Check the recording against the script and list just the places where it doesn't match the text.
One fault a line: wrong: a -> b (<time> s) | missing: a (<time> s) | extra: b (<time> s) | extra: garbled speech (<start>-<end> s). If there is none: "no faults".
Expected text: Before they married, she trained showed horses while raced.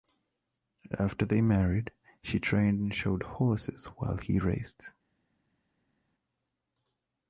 wrong: Before -> After (1.0 s)
extra: and (2.8 s)
extra: he (4.2 s)